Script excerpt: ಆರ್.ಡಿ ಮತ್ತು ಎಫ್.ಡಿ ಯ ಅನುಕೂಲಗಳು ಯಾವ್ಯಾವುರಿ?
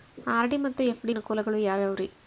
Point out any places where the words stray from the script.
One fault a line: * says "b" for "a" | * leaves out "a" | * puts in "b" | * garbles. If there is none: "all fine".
* leaves out "ಯ"